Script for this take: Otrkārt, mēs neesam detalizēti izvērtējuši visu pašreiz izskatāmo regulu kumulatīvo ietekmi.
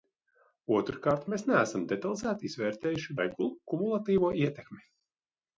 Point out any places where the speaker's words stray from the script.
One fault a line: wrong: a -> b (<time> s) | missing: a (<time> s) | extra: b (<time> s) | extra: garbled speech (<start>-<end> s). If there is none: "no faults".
missing: visu pašreiz izskatāmo (3.2 s)